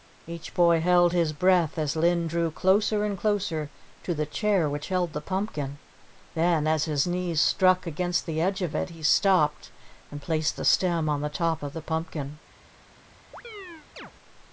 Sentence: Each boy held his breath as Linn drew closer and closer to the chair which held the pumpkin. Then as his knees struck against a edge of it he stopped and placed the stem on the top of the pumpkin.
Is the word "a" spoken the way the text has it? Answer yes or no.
no